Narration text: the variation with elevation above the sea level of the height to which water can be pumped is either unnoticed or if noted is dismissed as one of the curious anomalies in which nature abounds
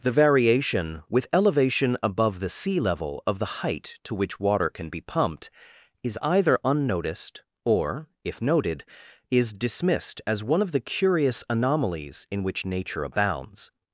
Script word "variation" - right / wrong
right